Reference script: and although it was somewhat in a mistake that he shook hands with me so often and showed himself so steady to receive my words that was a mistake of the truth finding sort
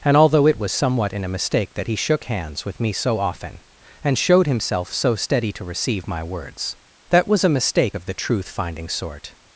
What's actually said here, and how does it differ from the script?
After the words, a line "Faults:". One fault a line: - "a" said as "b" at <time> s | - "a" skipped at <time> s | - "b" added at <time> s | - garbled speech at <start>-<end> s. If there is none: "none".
and although it was somewhat in a mistake that he shook hands with me so often and showed himself so steady to receive my words that was a mistake of the truth finding sort
Faults:
none